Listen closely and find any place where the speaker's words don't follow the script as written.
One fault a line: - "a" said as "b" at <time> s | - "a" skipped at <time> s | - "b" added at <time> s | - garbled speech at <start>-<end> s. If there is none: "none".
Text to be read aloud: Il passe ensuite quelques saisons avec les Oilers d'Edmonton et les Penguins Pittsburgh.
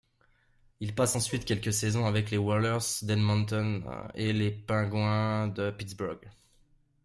- "de" added at 5.5 s